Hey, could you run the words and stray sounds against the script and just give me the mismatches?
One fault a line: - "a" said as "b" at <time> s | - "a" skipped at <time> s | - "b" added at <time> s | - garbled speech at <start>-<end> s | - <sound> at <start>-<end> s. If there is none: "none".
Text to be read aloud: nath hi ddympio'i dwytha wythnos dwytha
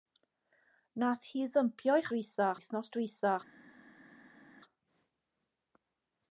none